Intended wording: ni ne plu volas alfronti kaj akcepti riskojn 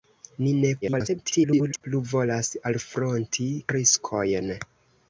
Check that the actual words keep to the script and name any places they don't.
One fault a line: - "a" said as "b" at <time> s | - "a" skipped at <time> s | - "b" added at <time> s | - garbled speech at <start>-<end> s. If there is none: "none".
- garbled speech at 0.8-1.8 s
- "kaj akcepti" skipped at 3.5 s